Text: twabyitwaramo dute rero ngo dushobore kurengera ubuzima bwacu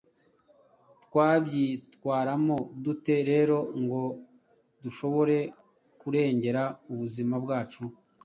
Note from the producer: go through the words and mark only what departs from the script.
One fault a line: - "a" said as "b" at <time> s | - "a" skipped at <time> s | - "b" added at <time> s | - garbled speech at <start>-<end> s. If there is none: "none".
none